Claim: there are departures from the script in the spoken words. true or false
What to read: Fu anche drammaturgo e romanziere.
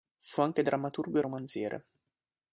false